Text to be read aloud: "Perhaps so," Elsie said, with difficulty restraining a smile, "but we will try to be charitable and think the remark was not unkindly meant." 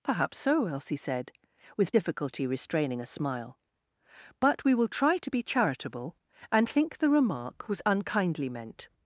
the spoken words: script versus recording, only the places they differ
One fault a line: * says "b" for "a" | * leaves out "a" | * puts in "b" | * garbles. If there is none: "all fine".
* leaves out "not"